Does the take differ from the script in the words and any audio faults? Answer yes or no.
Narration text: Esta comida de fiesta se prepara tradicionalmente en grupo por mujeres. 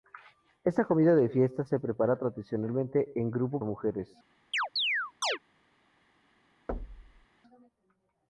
yes